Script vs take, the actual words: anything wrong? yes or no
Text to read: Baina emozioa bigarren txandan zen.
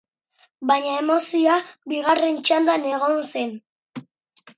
yes